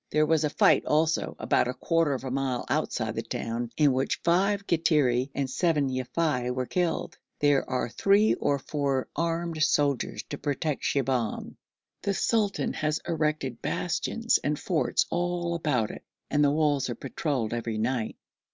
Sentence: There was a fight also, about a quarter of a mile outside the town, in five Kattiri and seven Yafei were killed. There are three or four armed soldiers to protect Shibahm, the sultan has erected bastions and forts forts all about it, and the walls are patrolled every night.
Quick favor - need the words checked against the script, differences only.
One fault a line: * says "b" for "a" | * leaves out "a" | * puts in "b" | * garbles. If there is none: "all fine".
* puts in "which"
* leaves out "forts"